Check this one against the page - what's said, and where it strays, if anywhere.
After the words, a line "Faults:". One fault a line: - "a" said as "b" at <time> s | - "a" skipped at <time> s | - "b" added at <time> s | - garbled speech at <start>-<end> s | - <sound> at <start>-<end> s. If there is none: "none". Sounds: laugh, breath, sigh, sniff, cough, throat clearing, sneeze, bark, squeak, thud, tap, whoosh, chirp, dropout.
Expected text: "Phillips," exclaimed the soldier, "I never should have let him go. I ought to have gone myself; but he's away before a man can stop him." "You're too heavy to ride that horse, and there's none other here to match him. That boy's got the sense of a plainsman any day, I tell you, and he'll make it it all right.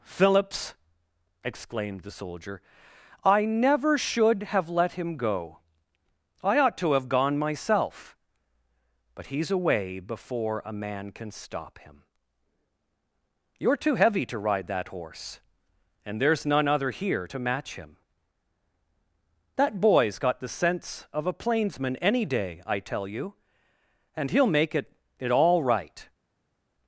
"Phillips," exclaimed the soldier, "I never should have let him go. I ought to have gone myself; but he's away before a man can stop him." "You're too heavy to ride that horse, and there's none other here to match him. That boy's got the sense of a plainsman any day, I tell you, and he'll make it it all right.
Faults:
none